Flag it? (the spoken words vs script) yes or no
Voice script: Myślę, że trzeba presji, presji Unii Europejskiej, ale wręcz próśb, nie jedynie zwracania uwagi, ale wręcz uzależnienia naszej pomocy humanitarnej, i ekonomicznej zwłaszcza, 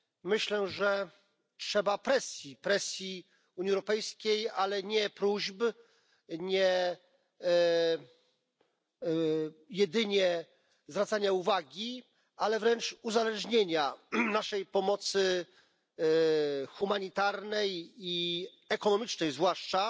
yes